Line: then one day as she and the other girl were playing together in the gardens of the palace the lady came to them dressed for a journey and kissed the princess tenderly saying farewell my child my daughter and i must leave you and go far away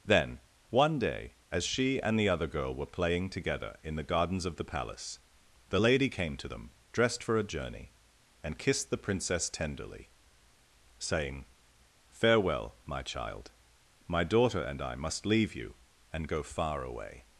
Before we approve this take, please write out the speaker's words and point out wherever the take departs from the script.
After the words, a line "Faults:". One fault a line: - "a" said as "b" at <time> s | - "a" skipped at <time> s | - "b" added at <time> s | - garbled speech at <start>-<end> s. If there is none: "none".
then one day as she and the other girl were playing together in the gardens of the palace the lady came to them dressed for a journey and kissed the princess tenderly saying farewell my child my daughter and i must leave you and go far away
Faults:
none